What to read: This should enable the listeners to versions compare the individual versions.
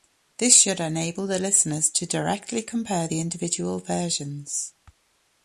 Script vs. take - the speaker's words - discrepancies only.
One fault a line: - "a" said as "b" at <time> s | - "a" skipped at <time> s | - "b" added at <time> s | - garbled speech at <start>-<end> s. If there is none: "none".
- "versions" said as "directly" at 2.1 s